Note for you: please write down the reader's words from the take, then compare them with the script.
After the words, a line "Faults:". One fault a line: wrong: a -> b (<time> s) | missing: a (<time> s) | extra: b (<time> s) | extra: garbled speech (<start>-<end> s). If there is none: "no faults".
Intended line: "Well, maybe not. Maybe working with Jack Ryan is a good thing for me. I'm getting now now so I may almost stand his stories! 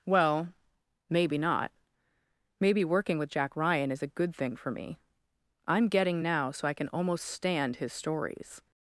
"Well, maybe not. Maybe working with Jack Ryan is a good thing for me. I'm getting now so I can almost stand his stories!
Faults:
missing: now (6.5 s)
wrong: may -> can (6.7 s)